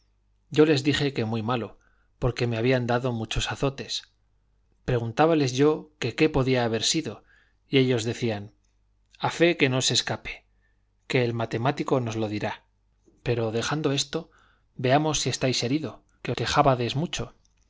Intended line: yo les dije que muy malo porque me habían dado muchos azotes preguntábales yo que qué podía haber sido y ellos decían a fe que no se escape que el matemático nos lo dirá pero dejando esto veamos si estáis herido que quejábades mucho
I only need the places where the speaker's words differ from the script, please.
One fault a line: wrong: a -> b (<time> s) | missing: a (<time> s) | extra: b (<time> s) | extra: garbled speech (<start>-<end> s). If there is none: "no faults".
no faults